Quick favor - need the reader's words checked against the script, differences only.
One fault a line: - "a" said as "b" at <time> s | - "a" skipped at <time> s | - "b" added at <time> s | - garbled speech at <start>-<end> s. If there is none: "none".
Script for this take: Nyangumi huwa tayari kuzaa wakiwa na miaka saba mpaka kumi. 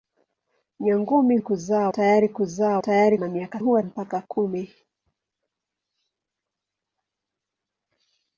- "huwa" said as "kuzaa" at 1.4 s
- "wakiwa" said as "tayari" at 2.8 s
- "saba" said as "huwa" at 3.6 s